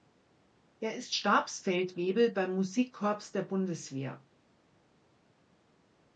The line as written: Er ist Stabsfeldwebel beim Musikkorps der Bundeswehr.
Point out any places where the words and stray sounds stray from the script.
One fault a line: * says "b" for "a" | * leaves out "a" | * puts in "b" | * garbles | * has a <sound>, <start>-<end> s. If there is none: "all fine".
all fine